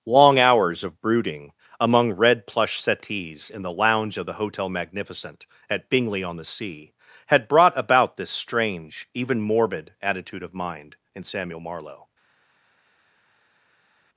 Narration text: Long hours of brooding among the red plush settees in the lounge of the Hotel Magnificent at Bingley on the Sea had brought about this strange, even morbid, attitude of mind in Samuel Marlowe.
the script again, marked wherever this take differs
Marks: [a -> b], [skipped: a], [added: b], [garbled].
Long hours of brooding among [skipped: the] red plush settees in the lounge of the Hotel Magnificent at Bingley on the Sea had brought about this strange, even morbid, attitude of mind in Samuel Marlowe.